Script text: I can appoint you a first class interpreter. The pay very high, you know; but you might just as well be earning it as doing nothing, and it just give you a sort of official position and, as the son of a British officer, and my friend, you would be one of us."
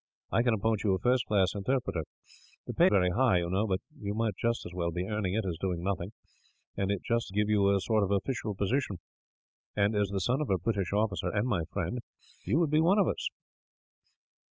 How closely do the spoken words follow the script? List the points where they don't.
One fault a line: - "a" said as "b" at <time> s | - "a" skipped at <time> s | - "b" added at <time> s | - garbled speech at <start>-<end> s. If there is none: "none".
none